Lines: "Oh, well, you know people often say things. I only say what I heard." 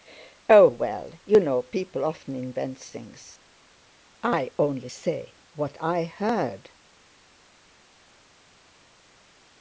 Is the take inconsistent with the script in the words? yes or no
yes